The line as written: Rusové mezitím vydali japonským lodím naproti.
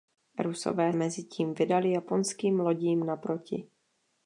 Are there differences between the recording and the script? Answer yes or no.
no